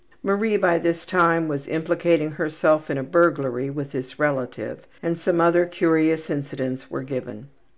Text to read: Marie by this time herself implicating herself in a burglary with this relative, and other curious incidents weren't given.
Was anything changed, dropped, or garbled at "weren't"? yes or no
yes